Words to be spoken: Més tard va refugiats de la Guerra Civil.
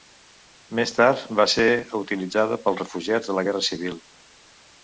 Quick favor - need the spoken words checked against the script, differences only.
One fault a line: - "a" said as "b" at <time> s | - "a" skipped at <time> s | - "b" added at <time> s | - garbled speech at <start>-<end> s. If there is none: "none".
- "ser utilitzada pels" added at 1.5 s